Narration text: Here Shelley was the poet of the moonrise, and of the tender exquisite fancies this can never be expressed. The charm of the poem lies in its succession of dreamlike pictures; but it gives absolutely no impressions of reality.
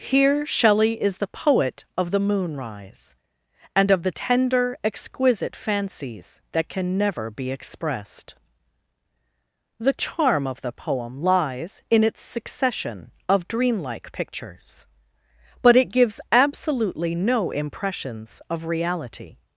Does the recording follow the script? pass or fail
fail